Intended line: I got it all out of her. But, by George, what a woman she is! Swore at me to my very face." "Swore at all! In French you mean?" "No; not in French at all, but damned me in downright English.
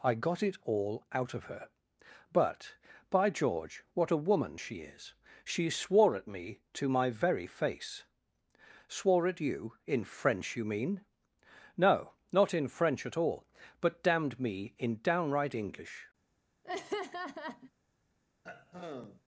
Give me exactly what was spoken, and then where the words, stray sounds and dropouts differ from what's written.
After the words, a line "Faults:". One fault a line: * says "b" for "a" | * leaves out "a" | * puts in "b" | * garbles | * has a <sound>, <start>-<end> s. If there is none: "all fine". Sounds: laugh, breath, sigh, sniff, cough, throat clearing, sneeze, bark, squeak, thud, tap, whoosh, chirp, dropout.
I got it all out of her. But, by George, what a woman she is! She swore at me to my very face." "Swore at you! In French you mean?" "No; not in French at all, but damned me in downright English.
Faults:
* puts in "She"
* says "you" for "all"
* has a laugh, 16.6-17.7 s
* has a throat clearing, 18.4-19.2 s